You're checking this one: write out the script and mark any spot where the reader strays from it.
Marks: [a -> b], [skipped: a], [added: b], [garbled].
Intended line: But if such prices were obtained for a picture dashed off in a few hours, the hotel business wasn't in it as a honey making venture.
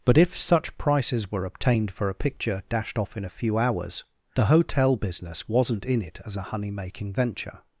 But if such prices were obtained for a picture dashed off in a few hours, the hotel business wasn't in it as a honey making venture.